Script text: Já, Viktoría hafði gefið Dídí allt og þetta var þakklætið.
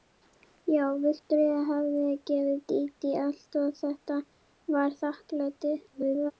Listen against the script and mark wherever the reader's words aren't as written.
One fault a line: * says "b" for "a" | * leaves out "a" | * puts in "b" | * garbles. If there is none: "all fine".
* garbles